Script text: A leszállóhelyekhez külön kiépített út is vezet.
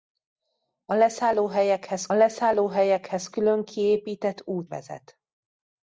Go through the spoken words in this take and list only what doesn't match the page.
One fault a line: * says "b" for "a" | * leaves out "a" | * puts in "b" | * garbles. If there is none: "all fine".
* puts in "leszállóhelyekhez"
* leaves out "is"